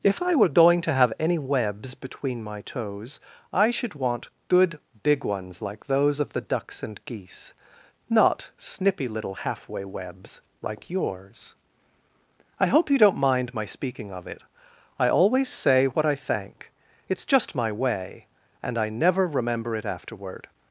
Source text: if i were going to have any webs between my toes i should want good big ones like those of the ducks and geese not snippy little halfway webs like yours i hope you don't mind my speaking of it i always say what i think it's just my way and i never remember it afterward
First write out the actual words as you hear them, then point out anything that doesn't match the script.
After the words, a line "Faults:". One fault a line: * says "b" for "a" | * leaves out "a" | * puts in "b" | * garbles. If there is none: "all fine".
if i were going to have any webs between my toes i should want good big ones like those of the ducks and geese not snippy little halfway webs like yours i hope you don't mind my speaking of it i always say what i thank it's just my way and i never remember it afterward
Faults:
* says "thank" for "think"